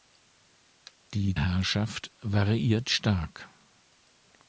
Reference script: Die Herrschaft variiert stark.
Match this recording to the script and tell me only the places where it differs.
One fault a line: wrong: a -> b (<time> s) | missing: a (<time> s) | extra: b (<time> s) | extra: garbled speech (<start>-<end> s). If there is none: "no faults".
no faults